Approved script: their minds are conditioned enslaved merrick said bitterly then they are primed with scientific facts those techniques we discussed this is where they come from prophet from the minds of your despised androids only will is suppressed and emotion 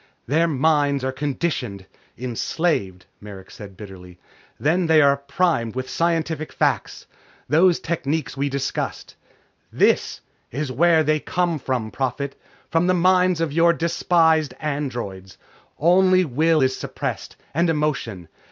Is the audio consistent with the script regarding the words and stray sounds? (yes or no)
yes